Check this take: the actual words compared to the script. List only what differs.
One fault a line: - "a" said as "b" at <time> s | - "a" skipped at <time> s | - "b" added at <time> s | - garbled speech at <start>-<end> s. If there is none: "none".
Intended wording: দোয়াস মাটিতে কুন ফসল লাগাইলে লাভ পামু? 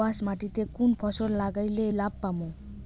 none